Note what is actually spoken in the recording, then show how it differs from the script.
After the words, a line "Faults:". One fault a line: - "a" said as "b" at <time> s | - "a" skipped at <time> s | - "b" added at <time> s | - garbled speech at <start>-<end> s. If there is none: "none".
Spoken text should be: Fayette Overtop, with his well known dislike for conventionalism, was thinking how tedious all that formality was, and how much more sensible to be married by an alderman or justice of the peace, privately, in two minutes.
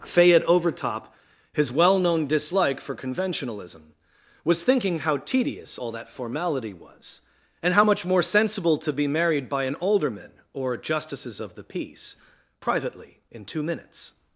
Fayette Overtop, his well known dislike for conventionalism, was thinking how tedious all that formality was, and how much more sensible to be married by an alderman or justices of the peace, privately, in two minutes.
Faults:
- "with" skipped at 1.1 s
- "justice" said as "justices" at 10.8 s